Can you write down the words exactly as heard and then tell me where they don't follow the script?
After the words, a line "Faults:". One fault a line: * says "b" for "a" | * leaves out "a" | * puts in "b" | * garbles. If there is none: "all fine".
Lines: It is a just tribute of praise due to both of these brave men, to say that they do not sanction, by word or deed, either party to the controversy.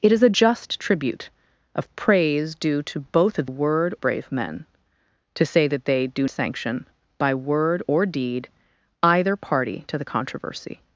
It is a just tribute of praise due to both of word brave men, to say that they do sanction, by word or deed, either party to the controversy.
Faults:
* says "word" for "these"
* leaves out "not"